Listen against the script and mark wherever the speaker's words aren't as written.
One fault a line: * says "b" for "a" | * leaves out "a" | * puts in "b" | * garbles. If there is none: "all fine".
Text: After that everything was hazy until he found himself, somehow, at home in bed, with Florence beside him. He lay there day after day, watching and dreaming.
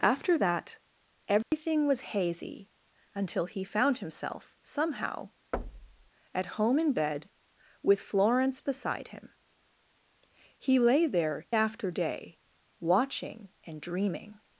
* leaves out "day"